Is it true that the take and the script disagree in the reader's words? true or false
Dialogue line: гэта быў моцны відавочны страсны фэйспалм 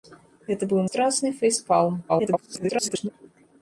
true